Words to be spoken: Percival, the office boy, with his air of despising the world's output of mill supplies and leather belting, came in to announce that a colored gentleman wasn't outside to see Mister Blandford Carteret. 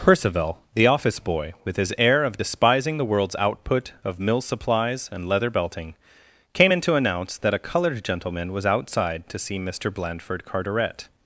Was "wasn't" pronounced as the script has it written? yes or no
no